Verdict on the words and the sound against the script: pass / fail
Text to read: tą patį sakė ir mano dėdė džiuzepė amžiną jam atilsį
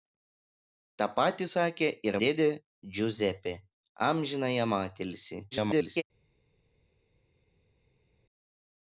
fail